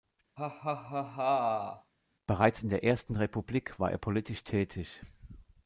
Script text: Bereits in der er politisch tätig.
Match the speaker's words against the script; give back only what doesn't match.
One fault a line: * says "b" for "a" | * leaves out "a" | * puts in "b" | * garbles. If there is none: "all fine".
* puts in "ersten Republik war"